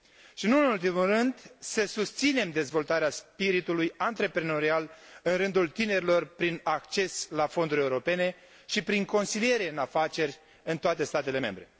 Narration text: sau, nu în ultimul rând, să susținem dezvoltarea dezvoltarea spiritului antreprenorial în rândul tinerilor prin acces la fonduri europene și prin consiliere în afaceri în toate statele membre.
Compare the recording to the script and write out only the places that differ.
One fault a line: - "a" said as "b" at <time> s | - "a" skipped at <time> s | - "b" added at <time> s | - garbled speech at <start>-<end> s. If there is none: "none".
- "sau" said as "și" at 0.3 s
- "dezvoltarea" skipped at 3.1 s